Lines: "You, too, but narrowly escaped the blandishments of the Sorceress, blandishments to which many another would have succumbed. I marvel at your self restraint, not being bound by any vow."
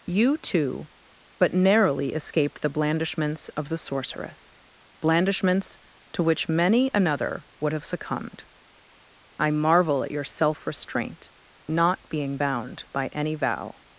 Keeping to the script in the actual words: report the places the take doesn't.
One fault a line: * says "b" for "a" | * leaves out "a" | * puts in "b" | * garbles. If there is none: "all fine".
all fine